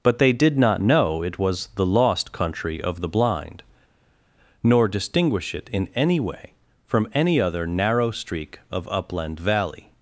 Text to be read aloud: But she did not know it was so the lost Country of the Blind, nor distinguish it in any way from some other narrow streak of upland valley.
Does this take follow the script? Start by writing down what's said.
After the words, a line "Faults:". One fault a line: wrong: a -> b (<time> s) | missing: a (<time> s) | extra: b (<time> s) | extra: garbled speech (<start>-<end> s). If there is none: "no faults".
But they did not know it was the lost Country of the Blind, nor distinguish it in any way from any other narrow streak of upland valley.
Faults:
wrong: she -> they (0.2 s)
missing: so (1.7 s)
wrong: some -> any (7.1 s)